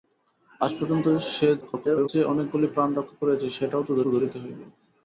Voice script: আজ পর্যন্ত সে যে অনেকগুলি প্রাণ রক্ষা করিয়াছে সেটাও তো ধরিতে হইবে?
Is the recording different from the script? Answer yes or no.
yes